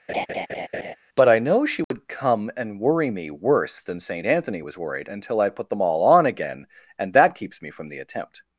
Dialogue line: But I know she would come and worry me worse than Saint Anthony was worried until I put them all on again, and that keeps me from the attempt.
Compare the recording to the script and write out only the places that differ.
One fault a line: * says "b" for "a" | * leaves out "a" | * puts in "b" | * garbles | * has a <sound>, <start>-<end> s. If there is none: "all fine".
* has a laugh, 0.1-1.0 s
* has a dropout, 1.8-1.9 s